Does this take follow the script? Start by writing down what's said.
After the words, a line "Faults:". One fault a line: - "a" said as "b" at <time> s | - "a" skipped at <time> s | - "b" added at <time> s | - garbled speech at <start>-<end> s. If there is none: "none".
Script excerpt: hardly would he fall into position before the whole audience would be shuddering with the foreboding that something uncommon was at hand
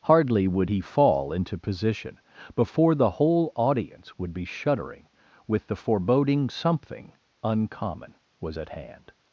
hardly would he fall into position before the whole audience would be shuddering with the foreboding something uncommon was at hand
Faults:
- "that" skipped at 6.5 s